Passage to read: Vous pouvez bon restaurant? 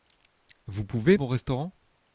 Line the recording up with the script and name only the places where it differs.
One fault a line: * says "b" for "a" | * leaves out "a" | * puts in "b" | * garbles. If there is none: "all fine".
all fine